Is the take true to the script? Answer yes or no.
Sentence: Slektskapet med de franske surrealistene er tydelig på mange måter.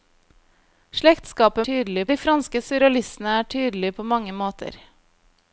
no